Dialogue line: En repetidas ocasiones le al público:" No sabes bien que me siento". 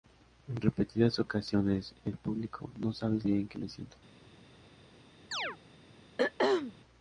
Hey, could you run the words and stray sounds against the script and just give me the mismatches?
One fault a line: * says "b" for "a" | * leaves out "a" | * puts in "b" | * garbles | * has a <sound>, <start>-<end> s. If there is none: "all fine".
* has a chirp, 5.3-5.6 s
* has a throat clearing, 6.2-6.7 s